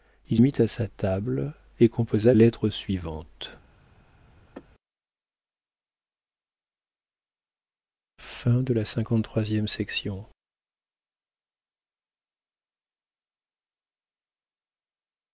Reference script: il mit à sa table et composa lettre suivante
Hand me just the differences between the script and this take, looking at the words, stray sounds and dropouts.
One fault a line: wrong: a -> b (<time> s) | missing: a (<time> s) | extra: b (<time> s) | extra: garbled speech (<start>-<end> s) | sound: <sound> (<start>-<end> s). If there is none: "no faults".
sound: sneeze (4.5-4.7 s)